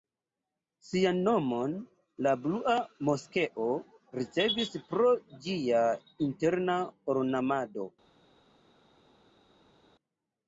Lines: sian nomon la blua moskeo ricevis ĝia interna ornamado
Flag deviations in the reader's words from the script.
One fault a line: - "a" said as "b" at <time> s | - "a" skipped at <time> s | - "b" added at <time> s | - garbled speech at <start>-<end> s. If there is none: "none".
- "pro" added at 4.9 s